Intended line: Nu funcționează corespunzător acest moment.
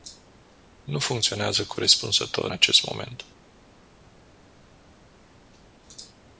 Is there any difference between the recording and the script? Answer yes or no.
no